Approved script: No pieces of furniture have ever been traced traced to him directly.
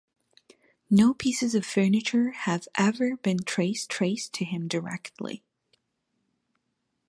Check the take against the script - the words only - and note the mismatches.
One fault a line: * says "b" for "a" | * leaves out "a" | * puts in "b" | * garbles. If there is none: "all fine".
all fine